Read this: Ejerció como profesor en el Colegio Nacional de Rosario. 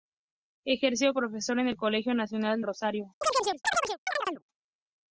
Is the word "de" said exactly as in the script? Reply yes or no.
no